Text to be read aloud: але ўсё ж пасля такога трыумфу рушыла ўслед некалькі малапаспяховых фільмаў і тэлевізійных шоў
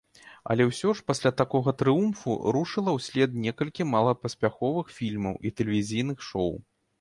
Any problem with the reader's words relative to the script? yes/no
no